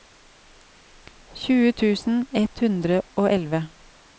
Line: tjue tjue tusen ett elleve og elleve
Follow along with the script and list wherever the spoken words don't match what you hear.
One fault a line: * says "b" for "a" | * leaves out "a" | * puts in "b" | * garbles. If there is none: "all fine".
* leaves out "tjue"
* says "hundre" for "elleve"